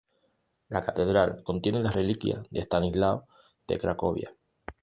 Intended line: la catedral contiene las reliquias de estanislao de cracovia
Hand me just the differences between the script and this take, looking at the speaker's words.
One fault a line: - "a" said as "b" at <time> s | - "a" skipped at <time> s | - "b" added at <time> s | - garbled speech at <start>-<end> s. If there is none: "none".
none